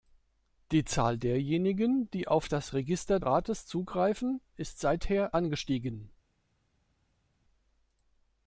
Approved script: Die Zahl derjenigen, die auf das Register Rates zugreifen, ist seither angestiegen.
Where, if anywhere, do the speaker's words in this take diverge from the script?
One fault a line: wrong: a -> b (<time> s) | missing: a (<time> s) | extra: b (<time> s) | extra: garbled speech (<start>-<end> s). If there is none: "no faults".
no faults